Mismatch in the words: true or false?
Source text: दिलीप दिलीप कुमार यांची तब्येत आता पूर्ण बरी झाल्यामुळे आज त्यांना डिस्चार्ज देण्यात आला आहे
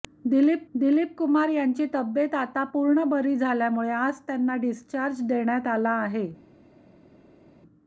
false